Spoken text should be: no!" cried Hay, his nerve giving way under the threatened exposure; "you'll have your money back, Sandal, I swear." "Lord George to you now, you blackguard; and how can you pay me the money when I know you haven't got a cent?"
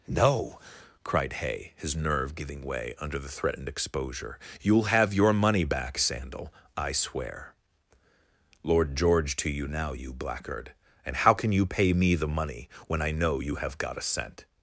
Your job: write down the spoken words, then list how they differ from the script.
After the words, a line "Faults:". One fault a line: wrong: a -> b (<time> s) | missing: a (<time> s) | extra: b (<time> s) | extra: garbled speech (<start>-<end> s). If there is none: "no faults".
no!" cried Hay, his nerve giving way under the threatened exposure; "you'll have your money back, Sandal, I swear." "Lord George to you now, you blackguard; and how can you pay me the money when I know you have got a cent?"
Faults:
wrong: haven't -> have (13.5 s)